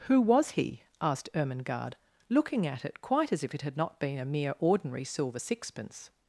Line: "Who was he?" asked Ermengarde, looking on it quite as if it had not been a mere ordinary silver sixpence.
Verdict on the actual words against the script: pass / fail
fail